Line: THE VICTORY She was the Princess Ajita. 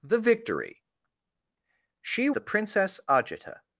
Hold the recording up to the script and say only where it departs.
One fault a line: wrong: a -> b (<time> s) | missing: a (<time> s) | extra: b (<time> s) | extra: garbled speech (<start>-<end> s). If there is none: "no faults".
missing: was (2.3 s)